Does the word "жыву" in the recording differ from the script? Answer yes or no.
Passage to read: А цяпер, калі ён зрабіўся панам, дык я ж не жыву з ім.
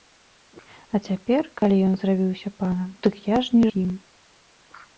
yes